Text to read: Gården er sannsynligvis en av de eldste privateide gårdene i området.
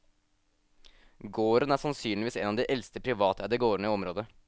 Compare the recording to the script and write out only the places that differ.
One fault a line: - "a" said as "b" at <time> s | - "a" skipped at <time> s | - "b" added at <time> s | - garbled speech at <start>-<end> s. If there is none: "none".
none